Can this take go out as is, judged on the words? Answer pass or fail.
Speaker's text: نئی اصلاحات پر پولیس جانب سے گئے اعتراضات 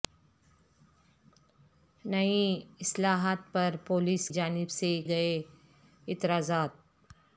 pass